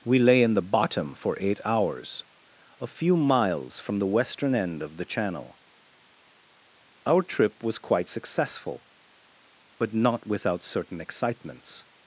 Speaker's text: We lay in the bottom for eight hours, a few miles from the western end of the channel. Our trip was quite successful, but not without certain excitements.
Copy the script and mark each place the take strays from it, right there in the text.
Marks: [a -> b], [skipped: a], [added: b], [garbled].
We lay in the bottom for eight hours, a few miles from the western end of the channel. Our trip was quite successful, but not without certain excitements.